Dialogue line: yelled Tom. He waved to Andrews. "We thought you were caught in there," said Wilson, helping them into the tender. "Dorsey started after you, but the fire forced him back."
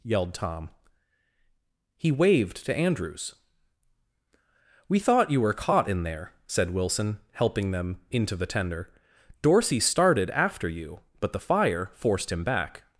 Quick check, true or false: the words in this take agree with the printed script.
true